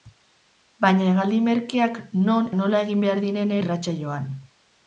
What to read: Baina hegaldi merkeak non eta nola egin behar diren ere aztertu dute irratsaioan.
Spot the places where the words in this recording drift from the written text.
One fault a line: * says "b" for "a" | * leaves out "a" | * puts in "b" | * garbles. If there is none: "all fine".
* leaves out "eta"
* leaves out "ere aztertu dute"